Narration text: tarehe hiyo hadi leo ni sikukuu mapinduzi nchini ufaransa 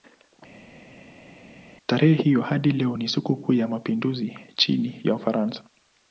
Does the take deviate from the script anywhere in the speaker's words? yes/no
yes